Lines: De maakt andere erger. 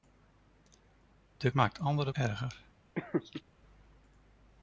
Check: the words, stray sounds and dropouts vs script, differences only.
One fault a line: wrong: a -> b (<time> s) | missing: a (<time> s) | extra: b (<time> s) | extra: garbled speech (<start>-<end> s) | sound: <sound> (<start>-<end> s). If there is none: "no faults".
sound: laugh (3.0-3.4 s)